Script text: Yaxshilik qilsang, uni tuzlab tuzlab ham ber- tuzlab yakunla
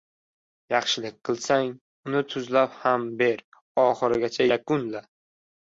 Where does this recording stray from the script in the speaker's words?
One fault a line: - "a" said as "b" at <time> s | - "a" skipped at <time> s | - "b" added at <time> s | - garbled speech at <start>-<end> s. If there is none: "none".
- "tuzlab" skipped at 2.8 s
- "tuzlab" said as "oxirigacha" at 3.9 s